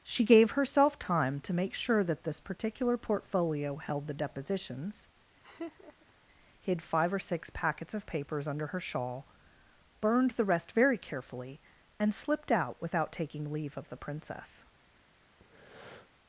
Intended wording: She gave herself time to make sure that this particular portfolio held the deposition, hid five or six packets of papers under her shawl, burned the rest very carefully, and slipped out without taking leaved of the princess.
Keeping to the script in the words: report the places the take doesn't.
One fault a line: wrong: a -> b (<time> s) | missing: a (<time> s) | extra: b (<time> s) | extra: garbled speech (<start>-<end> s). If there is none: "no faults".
wrong: deposition -> depositions (4.1 s)
wrong: leaved -> leave (13.5 s)